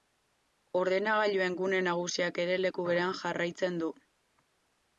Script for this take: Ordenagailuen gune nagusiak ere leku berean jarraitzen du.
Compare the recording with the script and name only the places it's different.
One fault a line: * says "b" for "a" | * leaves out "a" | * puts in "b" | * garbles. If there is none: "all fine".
all fine